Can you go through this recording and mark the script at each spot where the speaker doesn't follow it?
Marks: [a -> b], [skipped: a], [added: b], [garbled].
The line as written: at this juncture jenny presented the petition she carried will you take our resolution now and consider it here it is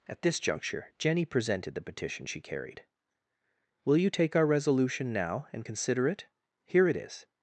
at this juncture jenny presented the petition she carried will you take our resolution now and consider it here it is